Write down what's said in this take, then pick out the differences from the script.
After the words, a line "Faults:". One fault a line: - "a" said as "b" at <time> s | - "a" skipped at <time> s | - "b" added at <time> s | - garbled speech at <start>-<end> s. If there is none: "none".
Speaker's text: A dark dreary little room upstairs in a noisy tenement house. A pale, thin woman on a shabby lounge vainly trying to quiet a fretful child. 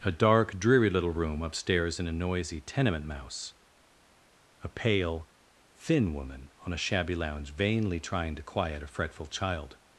A dark dreary little room upstairs in a noisy tenement mouse. A pale, thin woman on a shabby lounge vainly trying to quiet a fretful child.
Faults:
- "house" said as "mouse" at 3.0 s